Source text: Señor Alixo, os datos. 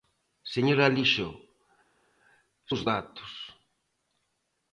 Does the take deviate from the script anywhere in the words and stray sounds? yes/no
no